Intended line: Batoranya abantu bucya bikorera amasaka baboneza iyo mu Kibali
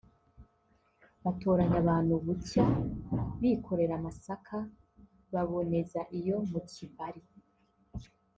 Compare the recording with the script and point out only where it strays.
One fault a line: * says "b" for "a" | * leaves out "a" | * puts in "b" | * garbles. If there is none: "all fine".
all fine